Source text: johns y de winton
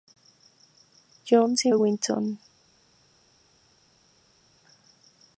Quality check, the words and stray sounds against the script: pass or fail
pass